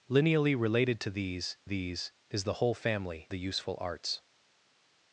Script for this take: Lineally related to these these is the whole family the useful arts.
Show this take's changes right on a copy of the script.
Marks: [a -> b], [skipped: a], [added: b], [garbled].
Lineally related to these these is the whole family the useful arts.